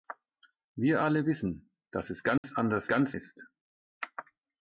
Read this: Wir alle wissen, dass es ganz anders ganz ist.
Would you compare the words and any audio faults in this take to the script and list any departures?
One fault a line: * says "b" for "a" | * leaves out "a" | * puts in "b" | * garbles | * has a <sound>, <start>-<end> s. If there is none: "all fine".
* has a dropout, 2.4-2.4 s